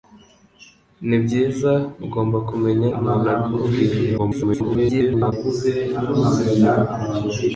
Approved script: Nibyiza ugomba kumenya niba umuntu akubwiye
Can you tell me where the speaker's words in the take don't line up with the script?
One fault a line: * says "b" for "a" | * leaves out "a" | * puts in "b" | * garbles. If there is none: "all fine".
* leaves out "niba"
* garbles